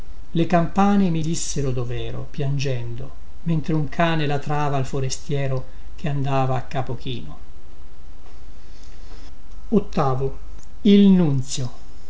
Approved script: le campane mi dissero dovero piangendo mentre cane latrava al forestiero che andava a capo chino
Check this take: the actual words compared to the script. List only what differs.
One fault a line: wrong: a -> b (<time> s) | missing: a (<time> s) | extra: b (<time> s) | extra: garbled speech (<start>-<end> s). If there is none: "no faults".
extra: un (3.7 s)